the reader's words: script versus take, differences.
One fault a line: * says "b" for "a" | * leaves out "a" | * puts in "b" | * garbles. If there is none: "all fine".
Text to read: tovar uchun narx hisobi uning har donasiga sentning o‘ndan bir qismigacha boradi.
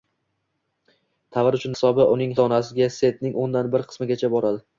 * leaves out "narx"
* leaves out "har"